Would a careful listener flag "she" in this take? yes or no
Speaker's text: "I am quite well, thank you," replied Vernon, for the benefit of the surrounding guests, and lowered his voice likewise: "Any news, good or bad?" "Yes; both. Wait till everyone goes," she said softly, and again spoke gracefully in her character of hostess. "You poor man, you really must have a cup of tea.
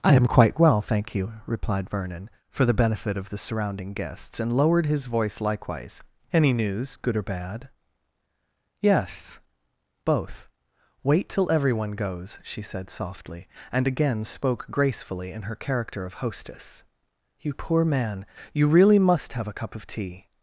no